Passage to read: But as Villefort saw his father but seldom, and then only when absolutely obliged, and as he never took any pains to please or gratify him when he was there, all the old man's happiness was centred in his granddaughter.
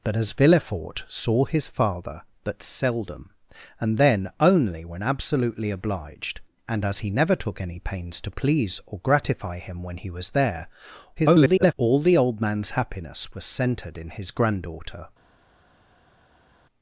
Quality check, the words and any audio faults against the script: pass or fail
fail